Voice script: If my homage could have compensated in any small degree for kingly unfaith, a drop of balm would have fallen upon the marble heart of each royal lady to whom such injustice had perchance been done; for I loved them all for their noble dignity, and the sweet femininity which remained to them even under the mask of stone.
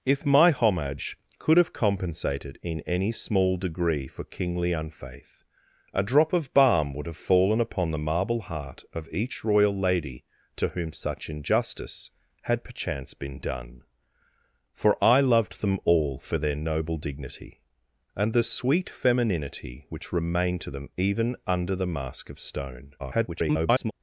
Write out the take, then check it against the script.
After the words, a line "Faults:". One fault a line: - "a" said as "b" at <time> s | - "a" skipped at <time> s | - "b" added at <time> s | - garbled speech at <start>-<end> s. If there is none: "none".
If my homage could have compensated in any small degree for kingly unfaith, a drop of balm would have fallen upon the marble heart of each royal lady to whom such injustice had perchance been done; for I loved them all for their noble dignity, and the sweet femininity which remained to them even under the mask of stone. [garbled]
Faults:
- garbled speech at 23.0-23.9 s